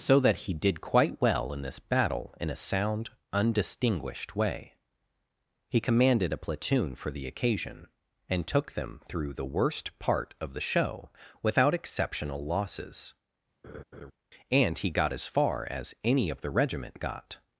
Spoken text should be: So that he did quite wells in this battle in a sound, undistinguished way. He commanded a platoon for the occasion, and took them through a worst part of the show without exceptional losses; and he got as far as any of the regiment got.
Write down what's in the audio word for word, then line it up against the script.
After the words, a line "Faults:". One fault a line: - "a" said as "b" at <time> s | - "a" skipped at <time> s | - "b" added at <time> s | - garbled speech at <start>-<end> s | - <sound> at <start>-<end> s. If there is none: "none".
So that he did quite well in this battle in a sound, undistinguished way. He commanded a platoon for the occasion, and took them through the worst part of the show without exceptional losses; and he got as far as any of the regiment got.
Faults:
- "wells" said as "well" at 1.2 s
- "a" said as "the" at 9.3 s
- laugh at 13.6-14.1 s